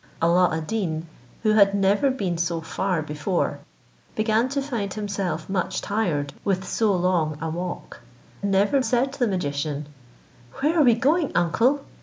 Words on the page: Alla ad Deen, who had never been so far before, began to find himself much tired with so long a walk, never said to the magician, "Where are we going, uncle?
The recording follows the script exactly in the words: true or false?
true